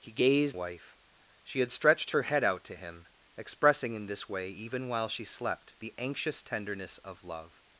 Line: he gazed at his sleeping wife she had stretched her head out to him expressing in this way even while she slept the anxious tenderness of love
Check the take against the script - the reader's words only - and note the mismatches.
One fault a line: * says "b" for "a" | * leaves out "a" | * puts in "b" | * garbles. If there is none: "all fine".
* leaves out "at his sleeping"